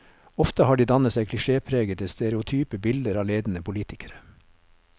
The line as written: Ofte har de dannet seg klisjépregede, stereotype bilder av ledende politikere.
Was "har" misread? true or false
false